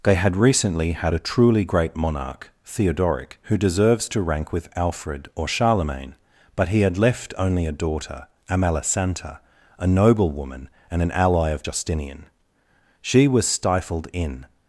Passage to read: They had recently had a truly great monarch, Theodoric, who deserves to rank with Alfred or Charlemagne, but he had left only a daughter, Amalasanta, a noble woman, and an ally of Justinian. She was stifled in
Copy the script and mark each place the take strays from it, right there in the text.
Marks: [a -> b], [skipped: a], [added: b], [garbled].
They had recently had a truly great monarch, Theodoric, who deserves to rank with Alfred or Charlemagne, but he had left only a daughter, Amalasanta, a noble woman, and an ally of Justinian. She was stifled in